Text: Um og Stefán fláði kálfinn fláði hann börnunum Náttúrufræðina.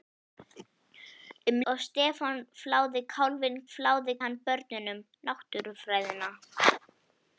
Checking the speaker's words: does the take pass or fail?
pass